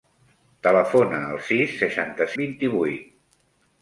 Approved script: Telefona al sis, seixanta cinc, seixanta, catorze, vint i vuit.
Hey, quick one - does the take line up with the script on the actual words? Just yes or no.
no